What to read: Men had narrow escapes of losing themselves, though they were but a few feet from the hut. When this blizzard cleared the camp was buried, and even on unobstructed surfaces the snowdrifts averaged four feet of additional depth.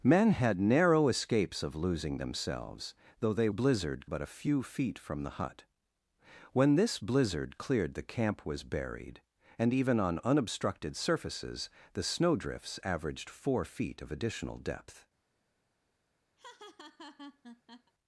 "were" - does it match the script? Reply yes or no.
no